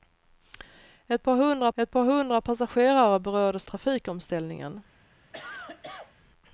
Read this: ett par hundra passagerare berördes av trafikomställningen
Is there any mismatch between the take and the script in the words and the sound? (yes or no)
yes